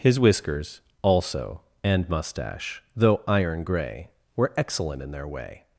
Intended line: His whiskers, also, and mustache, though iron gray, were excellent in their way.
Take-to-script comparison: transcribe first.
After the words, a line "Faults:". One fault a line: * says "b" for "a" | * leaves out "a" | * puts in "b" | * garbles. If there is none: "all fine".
His whiskers, also, and mustache, though iron gray, were excellent in their way.
Faults:
all fine